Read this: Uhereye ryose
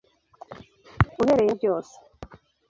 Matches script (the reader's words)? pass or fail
pass